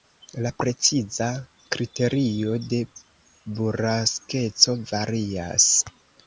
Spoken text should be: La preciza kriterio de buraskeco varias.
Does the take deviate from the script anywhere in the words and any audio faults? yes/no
no